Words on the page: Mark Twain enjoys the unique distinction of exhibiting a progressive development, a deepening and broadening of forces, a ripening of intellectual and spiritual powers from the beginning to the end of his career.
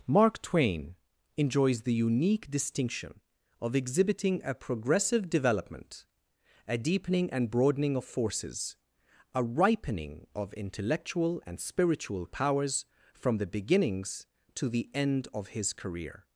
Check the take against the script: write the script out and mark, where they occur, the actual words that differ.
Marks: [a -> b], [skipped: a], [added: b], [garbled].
Mark Twain enjoys the unique distinction of exhibiting a progressive development, a deepening and broadening of forces, a ripening of intellectual and spiritual powers from the [beginning -> beginnings] to the end of his career.